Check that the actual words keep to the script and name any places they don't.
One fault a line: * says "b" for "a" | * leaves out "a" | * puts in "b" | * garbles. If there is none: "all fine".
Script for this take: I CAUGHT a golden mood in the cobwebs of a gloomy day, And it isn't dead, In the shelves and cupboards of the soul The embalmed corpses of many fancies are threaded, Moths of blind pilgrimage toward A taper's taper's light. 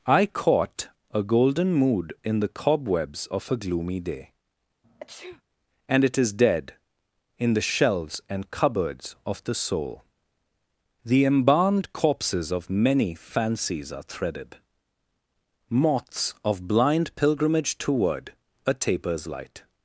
* says "is" for "isn't"
* leaves out "taper's"